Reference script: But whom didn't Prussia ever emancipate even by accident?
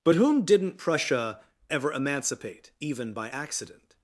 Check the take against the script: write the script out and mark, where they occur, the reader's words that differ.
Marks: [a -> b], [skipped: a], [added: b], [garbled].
But whom didn't Prussia ever emancipate even by accident?